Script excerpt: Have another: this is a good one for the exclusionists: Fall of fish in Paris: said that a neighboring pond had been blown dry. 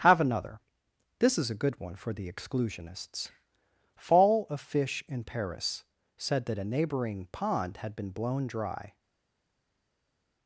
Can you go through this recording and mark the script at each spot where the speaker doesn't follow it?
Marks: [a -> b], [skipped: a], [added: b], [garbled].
Have another: this is a good one for the exclusionists: Fall of fish in Paris: said that a neighboring pond had been blown dry.